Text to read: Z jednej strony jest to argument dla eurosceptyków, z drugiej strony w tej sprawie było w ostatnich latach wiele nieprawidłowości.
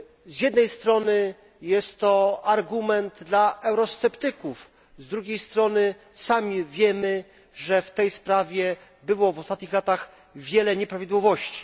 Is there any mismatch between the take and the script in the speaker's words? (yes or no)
yes